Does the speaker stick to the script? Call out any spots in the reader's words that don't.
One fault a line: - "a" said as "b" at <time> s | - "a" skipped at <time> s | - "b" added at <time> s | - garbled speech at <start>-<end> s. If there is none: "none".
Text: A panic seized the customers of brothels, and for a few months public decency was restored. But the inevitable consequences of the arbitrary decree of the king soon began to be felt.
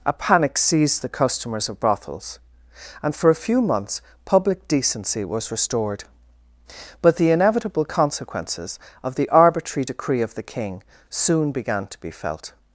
none